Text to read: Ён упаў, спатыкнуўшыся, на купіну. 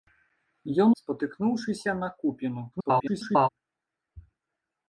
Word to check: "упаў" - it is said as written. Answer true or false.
false